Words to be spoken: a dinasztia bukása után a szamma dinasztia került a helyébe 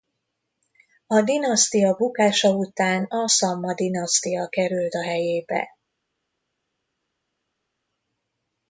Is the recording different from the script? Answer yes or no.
no